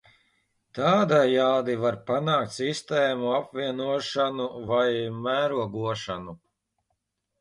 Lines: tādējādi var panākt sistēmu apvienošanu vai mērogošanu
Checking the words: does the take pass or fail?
pass